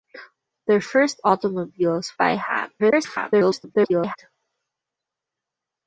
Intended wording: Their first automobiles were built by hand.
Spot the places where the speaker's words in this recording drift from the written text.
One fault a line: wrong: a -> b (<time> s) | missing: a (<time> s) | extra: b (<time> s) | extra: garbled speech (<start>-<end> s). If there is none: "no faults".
missing: were built (2.1 s)
extra: garbled speech (2.8-4.2 s)